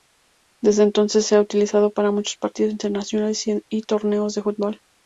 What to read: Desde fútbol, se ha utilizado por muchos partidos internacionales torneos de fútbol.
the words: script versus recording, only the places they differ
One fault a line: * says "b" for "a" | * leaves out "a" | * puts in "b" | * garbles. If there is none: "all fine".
* says "entonces" for "fútbol"
* says "para" for "por"
* puts in "y"